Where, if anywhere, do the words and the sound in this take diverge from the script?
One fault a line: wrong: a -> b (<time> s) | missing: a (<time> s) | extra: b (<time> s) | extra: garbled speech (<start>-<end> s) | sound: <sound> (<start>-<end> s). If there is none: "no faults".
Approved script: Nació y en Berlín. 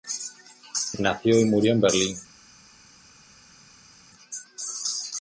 extra: murió (1.4 s)